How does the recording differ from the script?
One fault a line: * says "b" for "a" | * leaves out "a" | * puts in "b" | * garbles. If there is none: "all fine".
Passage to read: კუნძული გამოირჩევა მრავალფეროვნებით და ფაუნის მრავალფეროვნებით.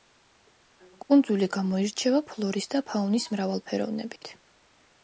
* says "ფლორის" for "მრავალფეროვნებით"